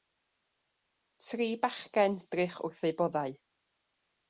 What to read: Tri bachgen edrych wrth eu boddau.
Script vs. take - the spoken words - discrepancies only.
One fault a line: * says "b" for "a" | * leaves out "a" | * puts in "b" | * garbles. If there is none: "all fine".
all fine